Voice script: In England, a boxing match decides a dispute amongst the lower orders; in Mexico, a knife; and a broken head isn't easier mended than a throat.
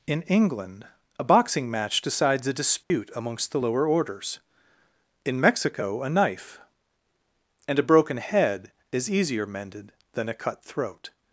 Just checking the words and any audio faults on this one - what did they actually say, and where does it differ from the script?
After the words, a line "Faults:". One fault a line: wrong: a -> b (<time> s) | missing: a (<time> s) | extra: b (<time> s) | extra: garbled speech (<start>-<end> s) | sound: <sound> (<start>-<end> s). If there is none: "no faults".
In England, a boxing match decides a dispute amongst the lower orders; in Mexico, a knife; and a broken head is easier mended than a cut throat.
Faults:
sound: dropout (2.8-2.9 s)
wrong: isn't -> is (8.9 s)
extra: cut (10.4 s)